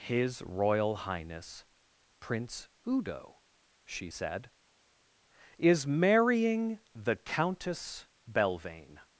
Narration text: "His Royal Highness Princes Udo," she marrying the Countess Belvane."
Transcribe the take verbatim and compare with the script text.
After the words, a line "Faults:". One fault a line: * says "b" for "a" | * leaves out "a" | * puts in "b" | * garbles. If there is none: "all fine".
"His Royal Highness Prince Udo," she said, "is marrying the Countess Belvane."
Faults:
* says "Prince" for "Princes"
* puts in "said is"